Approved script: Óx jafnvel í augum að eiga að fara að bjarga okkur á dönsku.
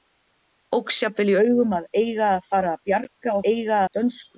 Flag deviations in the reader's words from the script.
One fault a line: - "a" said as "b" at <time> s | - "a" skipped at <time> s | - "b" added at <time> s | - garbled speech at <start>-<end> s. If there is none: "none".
- "okkur" said as "eiga" at 3.5 s